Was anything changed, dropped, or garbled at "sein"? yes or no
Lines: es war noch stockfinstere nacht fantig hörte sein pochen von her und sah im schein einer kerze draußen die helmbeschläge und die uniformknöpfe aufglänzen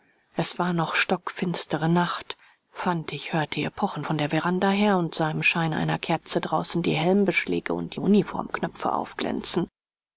yes